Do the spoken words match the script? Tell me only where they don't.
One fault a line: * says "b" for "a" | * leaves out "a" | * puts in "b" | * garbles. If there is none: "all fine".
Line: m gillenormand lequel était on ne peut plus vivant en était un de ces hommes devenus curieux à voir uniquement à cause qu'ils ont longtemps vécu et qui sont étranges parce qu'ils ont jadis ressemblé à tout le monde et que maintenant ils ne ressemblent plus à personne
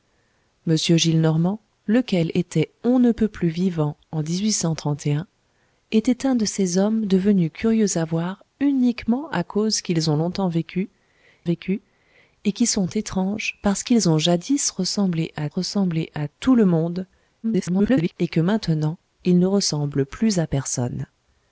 * puts in "vécu"
* puts in "ressemblé à"
* garbles